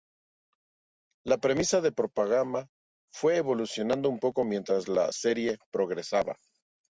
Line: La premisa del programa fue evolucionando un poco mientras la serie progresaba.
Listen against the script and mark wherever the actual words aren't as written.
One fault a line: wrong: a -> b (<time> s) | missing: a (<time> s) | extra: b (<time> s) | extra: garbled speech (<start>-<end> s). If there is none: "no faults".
no faults